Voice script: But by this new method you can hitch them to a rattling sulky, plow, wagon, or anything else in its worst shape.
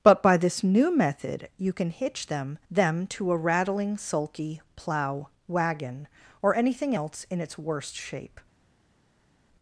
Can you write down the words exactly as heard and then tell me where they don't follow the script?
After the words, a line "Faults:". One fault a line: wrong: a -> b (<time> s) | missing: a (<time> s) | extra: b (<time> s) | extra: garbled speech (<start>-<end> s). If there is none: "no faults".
But by this new method you can hitch them them to a rattling sulky, plow, wagon, or anything else in its worst shape.
Faults:
extra: them (2.7 s)